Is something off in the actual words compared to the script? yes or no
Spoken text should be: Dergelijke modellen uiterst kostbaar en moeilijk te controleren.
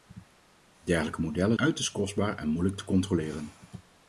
no